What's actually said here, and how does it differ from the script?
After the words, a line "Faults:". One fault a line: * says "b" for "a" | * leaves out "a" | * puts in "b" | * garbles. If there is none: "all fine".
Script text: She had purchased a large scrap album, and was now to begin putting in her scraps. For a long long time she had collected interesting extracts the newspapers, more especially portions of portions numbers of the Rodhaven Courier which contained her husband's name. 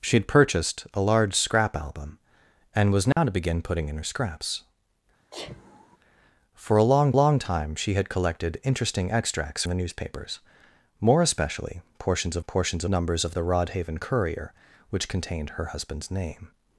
She had purchased a large scrap album, and was now to begin putting in her scraps. For a long long time she had collected interesting extracts the newspapers, more especially portions of portions numbers of the Rodhaven Courier which contained her husband's name.
Faults:
all fine